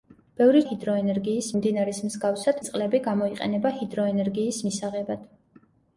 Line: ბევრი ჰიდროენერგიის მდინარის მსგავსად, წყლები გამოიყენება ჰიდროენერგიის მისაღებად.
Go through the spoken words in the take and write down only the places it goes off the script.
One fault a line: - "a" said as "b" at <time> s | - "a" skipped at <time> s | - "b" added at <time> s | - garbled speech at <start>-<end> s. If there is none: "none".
none